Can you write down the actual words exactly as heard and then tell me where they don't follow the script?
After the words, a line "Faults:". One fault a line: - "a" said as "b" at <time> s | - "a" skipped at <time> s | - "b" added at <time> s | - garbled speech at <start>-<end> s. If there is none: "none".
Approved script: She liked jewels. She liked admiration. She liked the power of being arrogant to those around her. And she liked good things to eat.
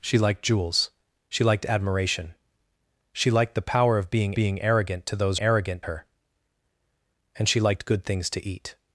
She liked jewels. She liked admiration. She liked the power of being being arrogant to those arrogant her. And she liked good things to eat.
Faults:
- "being" added at 4.3 s
- "around" said as "arrogant" at 5.4 s